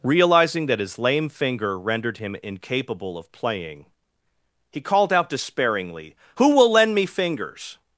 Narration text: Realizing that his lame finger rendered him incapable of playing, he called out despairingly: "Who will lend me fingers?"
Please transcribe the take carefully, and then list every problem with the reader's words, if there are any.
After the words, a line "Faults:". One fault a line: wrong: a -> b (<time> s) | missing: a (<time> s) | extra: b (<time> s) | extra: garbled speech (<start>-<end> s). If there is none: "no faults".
Realizing that his lame finger rendered him incapable of playing, he called out despairingly: "Who will lend me fingers?"
Faults:
no faults